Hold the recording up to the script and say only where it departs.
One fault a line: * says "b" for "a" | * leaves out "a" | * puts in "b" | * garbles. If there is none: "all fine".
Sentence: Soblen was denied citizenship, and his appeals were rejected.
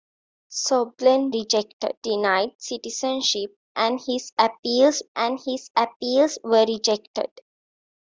* says "rejected" for "was"
* puts in "and his appeals"